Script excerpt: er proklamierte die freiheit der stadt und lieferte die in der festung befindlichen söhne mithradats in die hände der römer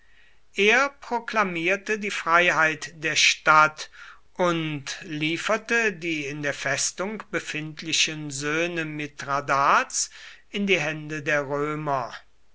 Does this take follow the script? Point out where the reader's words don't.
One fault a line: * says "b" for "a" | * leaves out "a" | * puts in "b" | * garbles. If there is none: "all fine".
all fine